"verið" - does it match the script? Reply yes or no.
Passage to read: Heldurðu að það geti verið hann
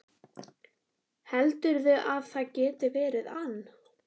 yes